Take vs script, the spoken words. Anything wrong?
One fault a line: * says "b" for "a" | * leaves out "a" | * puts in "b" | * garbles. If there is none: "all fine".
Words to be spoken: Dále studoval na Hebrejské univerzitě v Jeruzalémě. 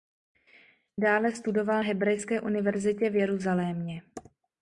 * leaves out "na"